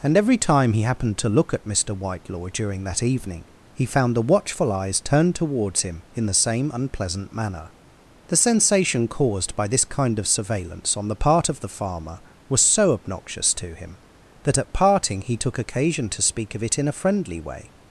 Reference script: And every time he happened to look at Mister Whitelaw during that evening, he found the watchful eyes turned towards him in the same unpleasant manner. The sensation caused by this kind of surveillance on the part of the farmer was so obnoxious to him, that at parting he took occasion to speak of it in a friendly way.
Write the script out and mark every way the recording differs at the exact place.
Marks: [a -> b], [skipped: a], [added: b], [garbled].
And every time he happened to look at Mister Whitelaw during that evening, he found the watchful eyes turned towards him in the same unpleasant manner. The sensation caused by this kind of surveillance on the part of the farmer was so obnoxious to him, that at parting he took occasion to speak of it in a friendly way.